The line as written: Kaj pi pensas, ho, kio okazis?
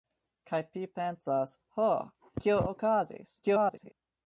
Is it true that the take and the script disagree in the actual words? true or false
true